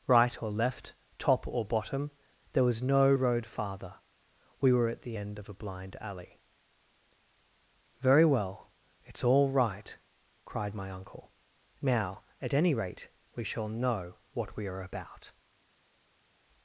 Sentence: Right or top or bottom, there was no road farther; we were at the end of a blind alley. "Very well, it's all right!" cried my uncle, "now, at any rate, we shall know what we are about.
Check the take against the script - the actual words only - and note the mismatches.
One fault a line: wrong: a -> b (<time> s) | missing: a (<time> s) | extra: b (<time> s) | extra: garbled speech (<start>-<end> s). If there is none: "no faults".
extra: left (0.5 s)